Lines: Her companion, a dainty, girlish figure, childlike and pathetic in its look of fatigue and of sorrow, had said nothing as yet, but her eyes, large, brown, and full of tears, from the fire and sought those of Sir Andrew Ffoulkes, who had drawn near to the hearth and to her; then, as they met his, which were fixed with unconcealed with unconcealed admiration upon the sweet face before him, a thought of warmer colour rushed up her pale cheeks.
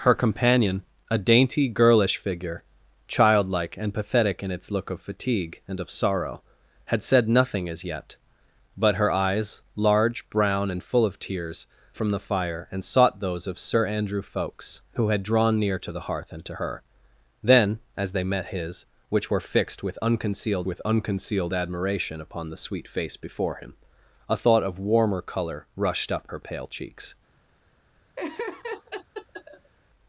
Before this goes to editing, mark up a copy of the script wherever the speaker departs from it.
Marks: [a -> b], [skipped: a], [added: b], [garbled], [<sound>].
Her companion, a dainty, girlish figure, childlike and pathetic in its look of fatigue and of sorrow, had said nothing as yet, but her eyes, large, brown, and full of tears, from the fire and sought those of Sir Andrew Ffoulkes, who had drawn near to the hearth and to her; then, as they met his, which were fixed with unconcealed with unconcealed admiration upon the sweet face before him, a thought of warmer colour rushed up her pale cheeks. [laugh]